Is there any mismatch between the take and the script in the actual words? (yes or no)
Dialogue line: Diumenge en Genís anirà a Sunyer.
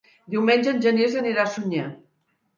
no